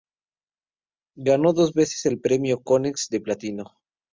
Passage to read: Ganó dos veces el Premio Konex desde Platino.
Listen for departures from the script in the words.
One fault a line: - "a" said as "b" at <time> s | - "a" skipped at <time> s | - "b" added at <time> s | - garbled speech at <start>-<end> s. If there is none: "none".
- "desde" said as "de" at 3.1 s